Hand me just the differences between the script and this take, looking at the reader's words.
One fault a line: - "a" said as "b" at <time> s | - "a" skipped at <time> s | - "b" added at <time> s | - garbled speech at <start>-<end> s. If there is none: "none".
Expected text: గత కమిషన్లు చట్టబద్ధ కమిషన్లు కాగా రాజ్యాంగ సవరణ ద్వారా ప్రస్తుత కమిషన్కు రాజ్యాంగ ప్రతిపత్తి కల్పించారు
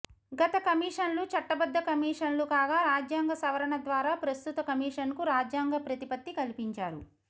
none